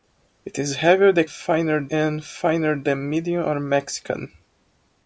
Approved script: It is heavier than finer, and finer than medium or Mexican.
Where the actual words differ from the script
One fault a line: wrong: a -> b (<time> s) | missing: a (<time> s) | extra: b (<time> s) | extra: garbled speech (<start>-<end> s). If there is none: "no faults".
no faults